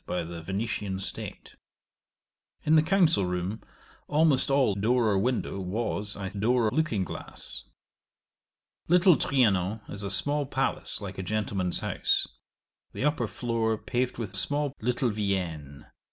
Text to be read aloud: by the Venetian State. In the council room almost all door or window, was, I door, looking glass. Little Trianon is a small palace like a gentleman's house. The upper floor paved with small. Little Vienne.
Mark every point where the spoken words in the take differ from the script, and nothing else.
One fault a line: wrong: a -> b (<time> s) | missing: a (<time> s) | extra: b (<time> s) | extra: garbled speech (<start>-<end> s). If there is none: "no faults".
no faults